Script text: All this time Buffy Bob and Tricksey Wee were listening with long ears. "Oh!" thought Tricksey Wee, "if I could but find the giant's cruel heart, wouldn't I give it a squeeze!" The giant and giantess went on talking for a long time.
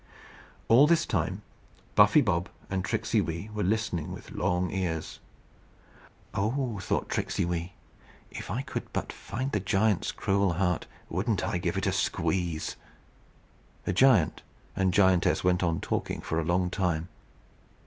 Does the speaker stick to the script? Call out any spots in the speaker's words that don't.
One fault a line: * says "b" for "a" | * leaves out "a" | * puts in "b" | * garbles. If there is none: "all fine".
all fine